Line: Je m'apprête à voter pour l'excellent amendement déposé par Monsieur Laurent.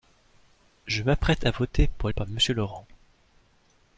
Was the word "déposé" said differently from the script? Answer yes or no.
yes